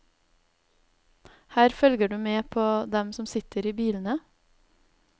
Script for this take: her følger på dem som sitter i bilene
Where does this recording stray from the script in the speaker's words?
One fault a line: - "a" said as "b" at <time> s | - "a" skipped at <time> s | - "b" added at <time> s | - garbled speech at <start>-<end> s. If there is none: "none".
- "du med" added at 2.1 s